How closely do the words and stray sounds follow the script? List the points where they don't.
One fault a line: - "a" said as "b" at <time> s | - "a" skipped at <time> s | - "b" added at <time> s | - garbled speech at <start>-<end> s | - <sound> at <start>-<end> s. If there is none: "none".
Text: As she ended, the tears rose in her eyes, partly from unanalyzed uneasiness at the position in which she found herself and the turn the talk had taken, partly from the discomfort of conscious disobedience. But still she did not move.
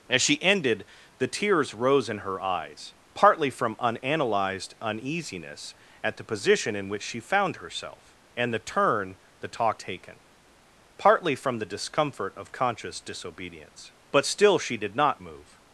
- "had" skipped at 9.8 s